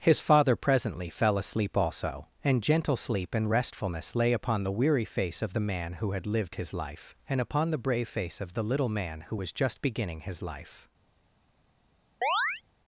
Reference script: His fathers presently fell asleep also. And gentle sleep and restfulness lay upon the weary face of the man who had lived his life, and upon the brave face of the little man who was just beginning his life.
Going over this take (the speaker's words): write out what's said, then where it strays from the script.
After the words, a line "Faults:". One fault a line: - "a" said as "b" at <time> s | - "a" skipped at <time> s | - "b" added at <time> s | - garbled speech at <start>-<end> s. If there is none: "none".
His father presently fell asleep also. And gentle sleep and restfulness lay upon the weary face of the man who had lived his life, and upon the brave face of the little man who was just beginning his life.
Faults:
- "fathers" said as "father" at 0.2 s